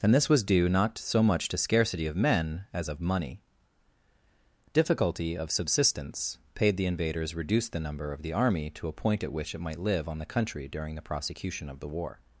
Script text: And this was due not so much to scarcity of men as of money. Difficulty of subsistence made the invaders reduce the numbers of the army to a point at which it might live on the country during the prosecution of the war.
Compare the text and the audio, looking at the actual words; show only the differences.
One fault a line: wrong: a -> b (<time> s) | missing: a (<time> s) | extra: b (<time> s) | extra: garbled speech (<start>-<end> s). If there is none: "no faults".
wrong: made -> paid (6.5 s)
wrong: numbers -> number (7.8 s)